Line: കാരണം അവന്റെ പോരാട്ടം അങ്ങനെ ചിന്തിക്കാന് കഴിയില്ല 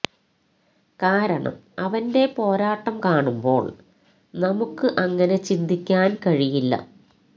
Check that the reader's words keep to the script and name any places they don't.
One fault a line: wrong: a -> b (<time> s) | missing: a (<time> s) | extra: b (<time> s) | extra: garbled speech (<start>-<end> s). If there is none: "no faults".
extra: കാണുമ്പോള് നമുക്ക് (3.0 s)